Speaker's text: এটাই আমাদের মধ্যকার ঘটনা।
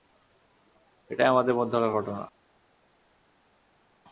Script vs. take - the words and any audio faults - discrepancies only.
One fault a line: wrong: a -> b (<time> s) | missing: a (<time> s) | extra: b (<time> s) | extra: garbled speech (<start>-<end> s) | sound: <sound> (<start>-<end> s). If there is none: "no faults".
no faults